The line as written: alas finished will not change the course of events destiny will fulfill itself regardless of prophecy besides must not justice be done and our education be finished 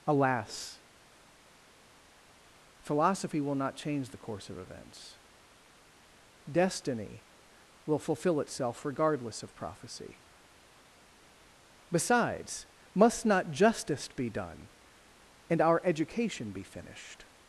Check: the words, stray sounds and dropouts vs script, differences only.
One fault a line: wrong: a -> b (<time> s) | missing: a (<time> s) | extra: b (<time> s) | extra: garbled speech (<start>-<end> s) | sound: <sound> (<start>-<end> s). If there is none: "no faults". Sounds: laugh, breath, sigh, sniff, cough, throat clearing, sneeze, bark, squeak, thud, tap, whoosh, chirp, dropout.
wrong: finished -> philosophy (2.8 s)